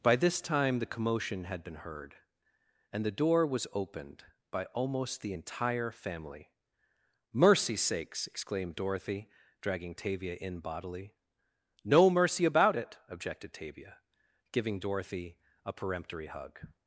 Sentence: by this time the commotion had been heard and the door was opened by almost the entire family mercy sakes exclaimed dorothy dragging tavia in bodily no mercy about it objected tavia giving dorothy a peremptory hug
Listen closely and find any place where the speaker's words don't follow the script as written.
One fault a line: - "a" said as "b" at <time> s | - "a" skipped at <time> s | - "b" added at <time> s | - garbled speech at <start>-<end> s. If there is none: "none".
none